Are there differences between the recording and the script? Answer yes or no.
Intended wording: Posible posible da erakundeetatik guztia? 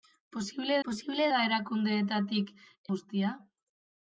no